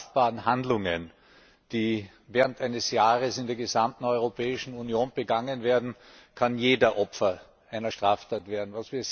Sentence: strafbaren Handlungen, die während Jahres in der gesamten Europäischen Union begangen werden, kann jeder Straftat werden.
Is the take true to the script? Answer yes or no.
no